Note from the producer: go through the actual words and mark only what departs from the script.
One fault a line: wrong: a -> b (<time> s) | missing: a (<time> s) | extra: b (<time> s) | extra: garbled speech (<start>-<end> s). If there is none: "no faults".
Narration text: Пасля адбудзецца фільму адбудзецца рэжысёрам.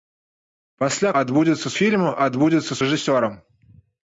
no faults